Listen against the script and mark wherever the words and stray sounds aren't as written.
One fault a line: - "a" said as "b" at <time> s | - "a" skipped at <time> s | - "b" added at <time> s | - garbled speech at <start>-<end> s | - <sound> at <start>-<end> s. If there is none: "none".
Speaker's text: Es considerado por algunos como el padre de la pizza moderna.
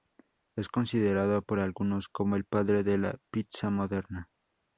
none